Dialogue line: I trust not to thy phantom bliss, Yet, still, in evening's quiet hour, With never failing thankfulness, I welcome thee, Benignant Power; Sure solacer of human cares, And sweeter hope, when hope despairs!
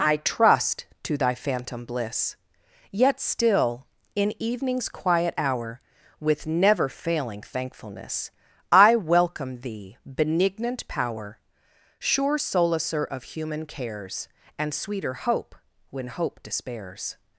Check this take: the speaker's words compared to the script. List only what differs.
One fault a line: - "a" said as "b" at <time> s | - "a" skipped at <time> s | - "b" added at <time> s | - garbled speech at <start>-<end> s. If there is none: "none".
- "not" skipped at 0.9 s